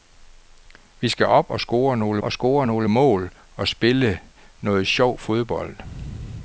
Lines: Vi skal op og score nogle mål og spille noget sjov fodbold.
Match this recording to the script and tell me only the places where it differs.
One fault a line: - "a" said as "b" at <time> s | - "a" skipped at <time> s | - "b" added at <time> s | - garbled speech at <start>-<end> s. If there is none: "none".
- "og score nogle" added at 2.2 s